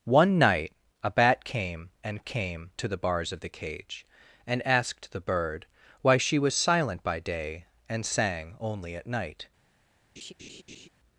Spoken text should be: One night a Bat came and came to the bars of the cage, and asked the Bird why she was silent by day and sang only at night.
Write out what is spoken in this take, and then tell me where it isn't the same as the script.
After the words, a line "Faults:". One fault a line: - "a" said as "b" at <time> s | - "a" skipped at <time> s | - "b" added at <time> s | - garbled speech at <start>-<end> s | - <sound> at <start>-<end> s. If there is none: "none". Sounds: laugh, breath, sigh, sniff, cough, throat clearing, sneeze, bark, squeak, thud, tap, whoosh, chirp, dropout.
One night a Bat came and came to the bars of the cage, and asked the Bird why she was silent by day and sang only at night.
Faults:
- laugh at 10.2-10.9 s